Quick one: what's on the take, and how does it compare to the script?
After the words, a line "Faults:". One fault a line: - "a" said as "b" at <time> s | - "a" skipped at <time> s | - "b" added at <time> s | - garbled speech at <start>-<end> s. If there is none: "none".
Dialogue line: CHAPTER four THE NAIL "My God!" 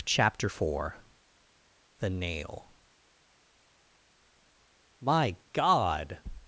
CHAPTER four THE NAIL "My God!"
Faults:
none